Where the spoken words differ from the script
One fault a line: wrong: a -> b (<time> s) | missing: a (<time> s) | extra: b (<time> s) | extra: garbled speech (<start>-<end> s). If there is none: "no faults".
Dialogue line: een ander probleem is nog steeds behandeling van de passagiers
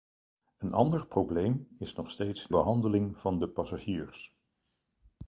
no faults